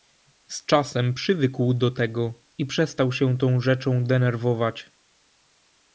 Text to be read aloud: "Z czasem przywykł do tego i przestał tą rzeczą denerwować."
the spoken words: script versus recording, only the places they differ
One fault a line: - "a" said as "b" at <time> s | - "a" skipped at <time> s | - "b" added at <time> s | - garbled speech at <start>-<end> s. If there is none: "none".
- "się" added at 3.1 s